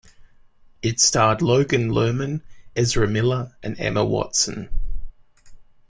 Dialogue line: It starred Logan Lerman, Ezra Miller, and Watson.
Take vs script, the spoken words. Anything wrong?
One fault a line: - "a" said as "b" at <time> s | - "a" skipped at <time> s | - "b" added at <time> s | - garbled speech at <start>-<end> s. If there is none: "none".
- "Emma" added at 3.8 s